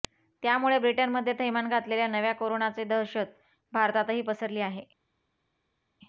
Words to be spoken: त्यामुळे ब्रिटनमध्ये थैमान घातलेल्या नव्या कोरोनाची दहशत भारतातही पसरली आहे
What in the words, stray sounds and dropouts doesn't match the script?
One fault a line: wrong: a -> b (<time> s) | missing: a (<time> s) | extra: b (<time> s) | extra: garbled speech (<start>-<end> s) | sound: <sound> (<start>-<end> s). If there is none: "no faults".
no faults